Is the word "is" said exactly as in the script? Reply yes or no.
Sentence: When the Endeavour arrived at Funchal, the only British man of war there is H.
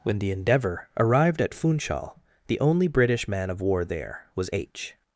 no